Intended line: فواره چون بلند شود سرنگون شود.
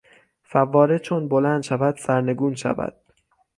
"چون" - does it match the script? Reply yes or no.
yes